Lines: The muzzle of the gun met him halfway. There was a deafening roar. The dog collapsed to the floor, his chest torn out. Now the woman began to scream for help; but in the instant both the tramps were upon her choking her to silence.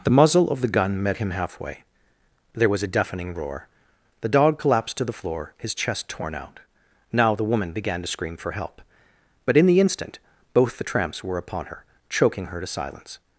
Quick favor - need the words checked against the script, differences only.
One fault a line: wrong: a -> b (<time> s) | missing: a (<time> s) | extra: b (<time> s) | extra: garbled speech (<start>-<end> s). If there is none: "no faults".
no faults